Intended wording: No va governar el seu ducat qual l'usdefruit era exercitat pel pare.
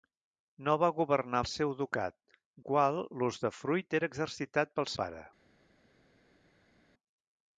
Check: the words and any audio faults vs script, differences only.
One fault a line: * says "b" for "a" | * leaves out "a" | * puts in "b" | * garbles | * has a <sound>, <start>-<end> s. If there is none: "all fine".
all fine